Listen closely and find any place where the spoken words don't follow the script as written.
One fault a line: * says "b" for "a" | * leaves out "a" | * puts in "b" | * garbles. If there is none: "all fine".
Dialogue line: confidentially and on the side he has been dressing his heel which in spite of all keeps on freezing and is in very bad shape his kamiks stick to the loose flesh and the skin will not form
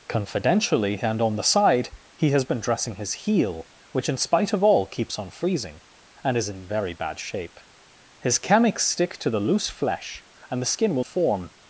* leaves out "not"